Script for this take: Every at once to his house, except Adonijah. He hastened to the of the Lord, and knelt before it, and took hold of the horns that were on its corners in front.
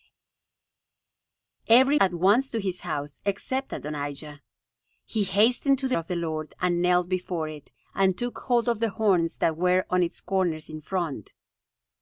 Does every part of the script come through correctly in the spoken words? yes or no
yes